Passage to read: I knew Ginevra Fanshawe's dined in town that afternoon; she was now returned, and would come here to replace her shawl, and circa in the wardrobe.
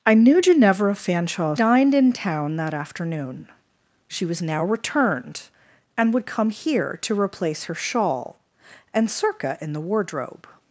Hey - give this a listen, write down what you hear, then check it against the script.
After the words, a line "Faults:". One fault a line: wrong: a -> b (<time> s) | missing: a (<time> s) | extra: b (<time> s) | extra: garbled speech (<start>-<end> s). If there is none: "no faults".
I knew Ginevra Fanshawe's dined in town that afternoon; she was now returned, and would come here to replace her shawl, and circa in the wardrobe.
Faults:
no faults